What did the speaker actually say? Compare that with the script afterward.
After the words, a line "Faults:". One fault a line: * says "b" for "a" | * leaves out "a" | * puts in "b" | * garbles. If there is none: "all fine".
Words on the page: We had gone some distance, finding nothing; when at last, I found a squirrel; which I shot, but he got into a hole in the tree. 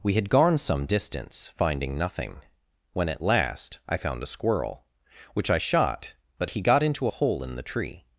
We had gone some distance, finding nothing; when at last, I found a squirrel; which I shot, but he got into a hole in the tree.
Faults:
all fine